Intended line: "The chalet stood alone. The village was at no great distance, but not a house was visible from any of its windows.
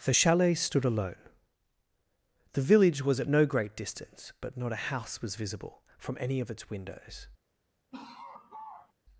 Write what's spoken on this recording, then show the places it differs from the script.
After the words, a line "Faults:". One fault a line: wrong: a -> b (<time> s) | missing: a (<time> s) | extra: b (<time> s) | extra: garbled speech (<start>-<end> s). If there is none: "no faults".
"The chalet stood alone. The village was at no great distance, but not a house was visible from any of its windows.
Faults:
no faults